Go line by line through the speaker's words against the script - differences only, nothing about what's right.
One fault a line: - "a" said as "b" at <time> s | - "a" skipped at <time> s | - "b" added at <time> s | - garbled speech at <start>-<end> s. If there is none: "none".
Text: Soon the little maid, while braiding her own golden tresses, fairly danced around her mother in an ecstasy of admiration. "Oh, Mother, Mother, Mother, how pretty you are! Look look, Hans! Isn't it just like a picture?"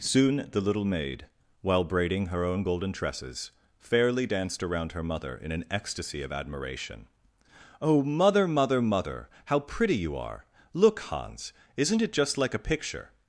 - "look" skipped at 11.0 s